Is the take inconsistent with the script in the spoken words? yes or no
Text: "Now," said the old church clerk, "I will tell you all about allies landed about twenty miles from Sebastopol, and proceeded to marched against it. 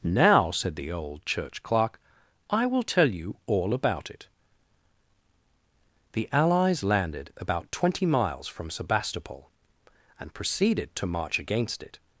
yes